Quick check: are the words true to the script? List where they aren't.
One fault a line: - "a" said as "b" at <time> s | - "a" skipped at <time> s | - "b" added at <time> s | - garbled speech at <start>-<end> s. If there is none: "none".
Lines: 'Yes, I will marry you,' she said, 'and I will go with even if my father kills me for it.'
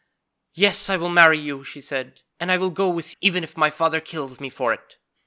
none